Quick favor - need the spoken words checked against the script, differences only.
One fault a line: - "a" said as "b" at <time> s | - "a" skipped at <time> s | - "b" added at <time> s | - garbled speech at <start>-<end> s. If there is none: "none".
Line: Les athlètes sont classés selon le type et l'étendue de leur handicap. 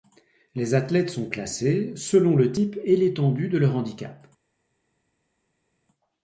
none